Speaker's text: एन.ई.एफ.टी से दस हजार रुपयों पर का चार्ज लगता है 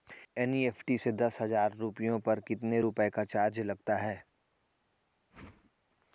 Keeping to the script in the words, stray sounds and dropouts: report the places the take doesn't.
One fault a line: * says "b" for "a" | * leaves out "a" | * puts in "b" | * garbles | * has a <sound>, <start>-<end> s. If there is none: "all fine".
* puts in "कितने रुपए"
* has a whoosh, 5.3-5.7 s